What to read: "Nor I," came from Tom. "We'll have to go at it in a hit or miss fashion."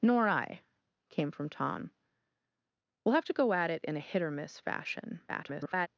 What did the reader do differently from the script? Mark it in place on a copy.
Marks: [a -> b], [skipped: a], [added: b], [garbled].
"Nor I," came from Tom. "We'll have to go at it in a hit or miss fashion." [garbled]